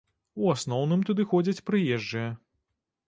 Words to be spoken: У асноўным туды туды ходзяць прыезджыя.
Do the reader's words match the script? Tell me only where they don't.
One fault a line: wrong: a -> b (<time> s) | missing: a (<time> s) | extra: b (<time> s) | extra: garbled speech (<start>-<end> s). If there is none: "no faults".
missing: туды (1.2 s)